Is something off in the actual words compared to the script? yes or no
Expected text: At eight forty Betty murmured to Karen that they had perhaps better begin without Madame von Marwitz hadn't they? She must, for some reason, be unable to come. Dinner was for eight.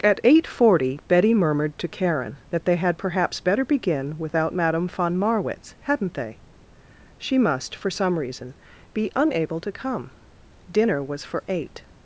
no